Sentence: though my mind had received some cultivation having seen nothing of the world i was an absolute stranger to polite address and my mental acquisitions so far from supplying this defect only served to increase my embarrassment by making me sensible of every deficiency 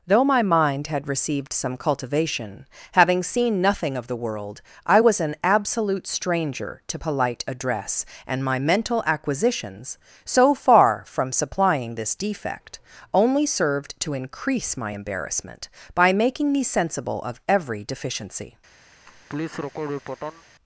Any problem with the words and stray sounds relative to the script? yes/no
yes